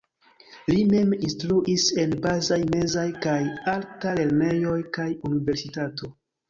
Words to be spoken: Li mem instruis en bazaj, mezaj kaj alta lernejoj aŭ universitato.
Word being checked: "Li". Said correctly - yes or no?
yes